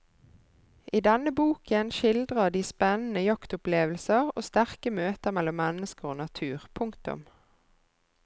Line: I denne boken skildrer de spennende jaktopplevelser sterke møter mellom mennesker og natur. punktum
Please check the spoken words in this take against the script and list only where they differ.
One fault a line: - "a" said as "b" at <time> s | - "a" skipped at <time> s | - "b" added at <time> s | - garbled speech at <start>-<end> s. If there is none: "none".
- "og" added at 4.3 s